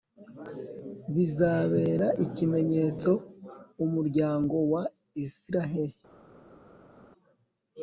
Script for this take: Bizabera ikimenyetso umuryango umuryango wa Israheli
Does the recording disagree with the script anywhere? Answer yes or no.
yes